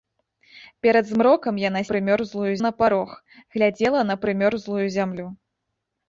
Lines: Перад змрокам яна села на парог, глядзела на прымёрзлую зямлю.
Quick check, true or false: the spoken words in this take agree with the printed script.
false